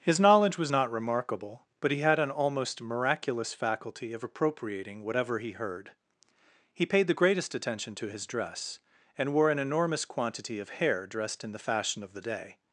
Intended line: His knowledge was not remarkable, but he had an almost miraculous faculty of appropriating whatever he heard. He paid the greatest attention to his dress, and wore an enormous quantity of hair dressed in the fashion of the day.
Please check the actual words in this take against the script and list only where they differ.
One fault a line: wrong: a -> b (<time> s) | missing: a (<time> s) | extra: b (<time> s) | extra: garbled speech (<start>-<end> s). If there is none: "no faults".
no faults